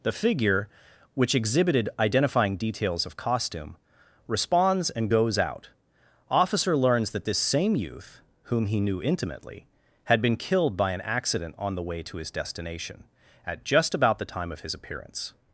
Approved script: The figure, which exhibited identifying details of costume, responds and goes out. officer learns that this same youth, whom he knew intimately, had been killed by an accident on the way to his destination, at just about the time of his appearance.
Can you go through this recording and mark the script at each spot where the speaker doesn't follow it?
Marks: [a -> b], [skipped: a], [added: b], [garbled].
The figure, which exhibited identifying details of costume, responds and goes out. officer learns that this same youth, whom he knew intimately, had been killed by an accident on the way to his destination, at just about the time of his appearance.